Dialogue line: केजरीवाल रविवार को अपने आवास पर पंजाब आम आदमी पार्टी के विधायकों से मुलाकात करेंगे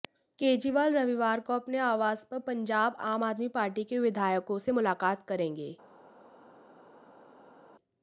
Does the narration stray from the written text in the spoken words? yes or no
no